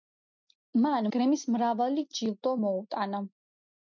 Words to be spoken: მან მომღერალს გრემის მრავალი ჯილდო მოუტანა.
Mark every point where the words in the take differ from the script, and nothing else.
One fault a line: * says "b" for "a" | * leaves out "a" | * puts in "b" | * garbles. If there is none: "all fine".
* leaves out "მომღერალს"